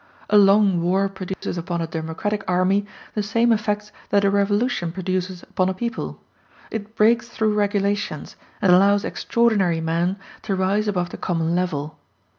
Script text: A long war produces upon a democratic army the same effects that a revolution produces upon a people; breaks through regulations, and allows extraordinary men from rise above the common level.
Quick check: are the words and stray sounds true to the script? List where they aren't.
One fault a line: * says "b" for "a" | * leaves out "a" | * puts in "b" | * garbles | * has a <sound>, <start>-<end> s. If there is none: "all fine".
* has a dropout, 1.3-1.4 s
* puts in "it"
* says "to" for "from"